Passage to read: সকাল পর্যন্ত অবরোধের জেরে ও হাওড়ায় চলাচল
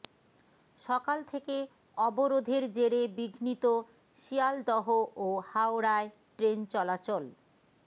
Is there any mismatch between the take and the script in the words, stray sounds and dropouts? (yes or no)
yes